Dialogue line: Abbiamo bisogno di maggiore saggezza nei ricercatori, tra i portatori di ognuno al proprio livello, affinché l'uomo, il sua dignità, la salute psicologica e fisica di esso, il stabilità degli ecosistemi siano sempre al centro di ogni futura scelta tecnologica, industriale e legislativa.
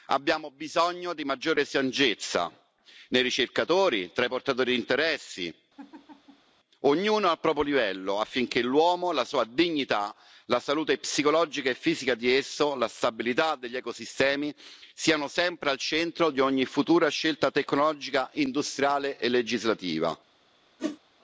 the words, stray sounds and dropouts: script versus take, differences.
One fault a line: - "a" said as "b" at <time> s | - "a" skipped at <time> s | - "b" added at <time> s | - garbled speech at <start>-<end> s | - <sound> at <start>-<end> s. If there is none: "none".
- "interessi" added at 4.8 s
- laugh at 5.8-6.5 s
- "il" said as "la" at 9.1 s
- "il" said as "la" at 12.7 s
- whoosh at 20.8-21.0 s